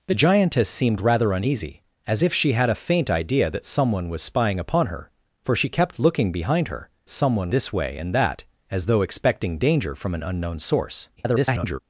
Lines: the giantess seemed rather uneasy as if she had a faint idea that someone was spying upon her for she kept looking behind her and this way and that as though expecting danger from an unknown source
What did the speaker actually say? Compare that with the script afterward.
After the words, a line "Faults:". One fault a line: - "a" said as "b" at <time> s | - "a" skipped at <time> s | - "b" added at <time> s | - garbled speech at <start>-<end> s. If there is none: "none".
the giantess seemed rather uneasy as if she had a faint idea that someone was spying upon her for she kept looking behind her someone this way and that as though expecting danger from an unknown source [garbled]
Faults:
- "and" said as "someone" at 7.1 s
- garbled speech at 11.2-11.8 s